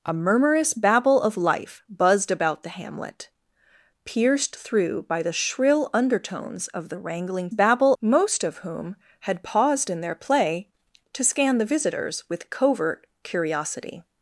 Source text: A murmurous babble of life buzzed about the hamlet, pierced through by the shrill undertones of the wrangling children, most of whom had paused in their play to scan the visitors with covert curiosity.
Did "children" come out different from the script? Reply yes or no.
yes